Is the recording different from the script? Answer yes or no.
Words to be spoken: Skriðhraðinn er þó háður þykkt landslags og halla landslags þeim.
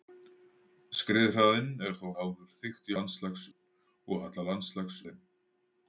no